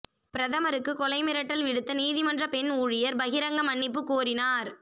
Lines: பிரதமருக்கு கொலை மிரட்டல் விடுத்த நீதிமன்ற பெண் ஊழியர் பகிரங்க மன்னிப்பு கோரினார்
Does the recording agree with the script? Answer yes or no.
yes